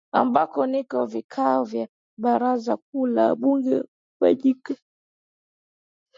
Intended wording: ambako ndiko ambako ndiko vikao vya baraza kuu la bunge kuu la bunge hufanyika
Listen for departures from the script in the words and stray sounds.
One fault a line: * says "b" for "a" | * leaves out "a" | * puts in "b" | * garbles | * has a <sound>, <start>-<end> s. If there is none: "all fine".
* leaves out "ambako ndiko"
* leaves out "kuu la bunge"